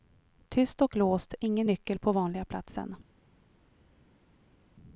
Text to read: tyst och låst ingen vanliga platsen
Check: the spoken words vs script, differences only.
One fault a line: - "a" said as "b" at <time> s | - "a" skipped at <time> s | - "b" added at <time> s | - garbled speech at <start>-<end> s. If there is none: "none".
- "nyckel på" added at 1.7 s